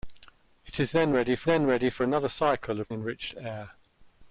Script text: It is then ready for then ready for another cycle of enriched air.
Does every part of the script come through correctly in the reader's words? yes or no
yes